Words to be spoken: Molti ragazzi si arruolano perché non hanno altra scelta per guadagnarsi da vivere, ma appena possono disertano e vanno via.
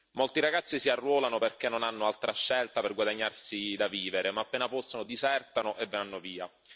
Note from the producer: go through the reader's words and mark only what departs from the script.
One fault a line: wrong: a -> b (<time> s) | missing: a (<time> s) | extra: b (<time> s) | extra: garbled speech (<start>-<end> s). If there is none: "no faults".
no faults